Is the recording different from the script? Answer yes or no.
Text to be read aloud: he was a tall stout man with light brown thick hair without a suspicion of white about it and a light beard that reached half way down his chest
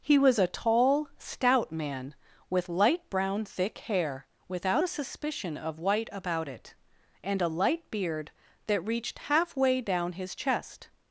no